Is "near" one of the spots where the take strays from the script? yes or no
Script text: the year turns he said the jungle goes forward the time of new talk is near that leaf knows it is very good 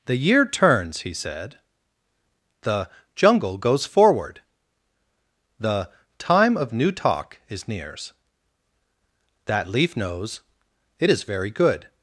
yes